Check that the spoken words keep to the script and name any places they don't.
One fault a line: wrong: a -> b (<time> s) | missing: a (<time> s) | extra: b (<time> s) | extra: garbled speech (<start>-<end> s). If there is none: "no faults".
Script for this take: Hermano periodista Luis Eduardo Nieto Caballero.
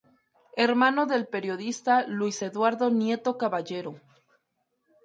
extra: del (1.1 s)